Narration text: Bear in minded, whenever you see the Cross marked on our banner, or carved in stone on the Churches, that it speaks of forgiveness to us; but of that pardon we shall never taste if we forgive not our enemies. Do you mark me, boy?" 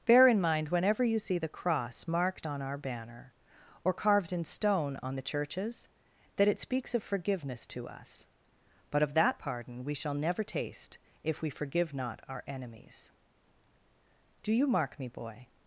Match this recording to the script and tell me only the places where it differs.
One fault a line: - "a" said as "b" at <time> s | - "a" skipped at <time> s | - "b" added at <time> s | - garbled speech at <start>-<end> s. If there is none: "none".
- "minded" said as "mind" at 0.4 s